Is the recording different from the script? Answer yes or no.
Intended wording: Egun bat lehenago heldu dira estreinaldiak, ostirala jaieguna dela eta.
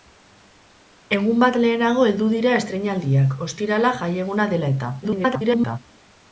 yes